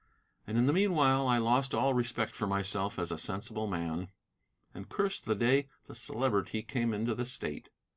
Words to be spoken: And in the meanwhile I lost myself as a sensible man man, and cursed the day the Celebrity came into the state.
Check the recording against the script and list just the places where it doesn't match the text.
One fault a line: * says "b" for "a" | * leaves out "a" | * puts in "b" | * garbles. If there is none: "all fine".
* puts in "all respect for"
* leaves out "man"